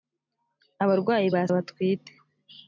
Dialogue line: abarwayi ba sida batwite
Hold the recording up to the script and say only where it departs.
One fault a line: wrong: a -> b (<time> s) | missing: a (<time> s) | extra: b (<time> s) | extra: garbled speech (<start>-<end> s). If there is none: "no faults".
missing: sida (1.4 s)